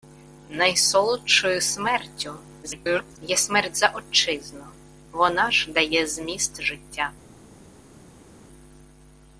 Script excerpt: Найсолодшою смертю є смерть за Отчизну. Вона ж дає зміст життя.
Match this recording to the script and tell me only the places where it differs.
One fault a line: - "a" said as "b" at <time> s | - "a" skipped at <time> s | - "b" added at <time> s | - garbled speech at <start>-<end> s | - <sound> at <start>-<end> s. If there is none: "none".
- garbled speech at 2.6-3.2 s